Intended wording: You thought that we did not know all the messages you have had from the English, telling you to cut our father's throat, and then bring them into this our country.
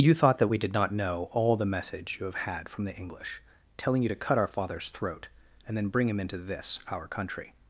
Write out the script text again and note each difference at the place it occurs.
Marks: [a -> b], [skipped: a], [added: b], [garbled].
You thought that we did not know all the [messages -> message] you have had from the English, telling you to cut our father's throat, and then bring [them -> him] into this our country.